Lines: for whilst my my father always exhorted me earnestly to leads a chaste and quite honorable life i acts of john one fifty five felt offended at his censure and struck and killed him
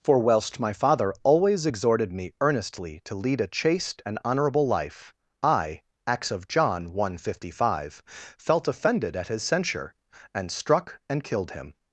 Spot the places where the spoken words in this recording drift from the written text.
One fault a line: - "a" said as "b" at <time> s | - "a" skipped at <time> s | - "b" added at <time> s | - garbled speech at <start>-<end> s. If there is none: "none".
- "my" skipped at 0.7 s
- "leads" said as "lead" at 3.2 s
- "quite" skipped at 4.2 s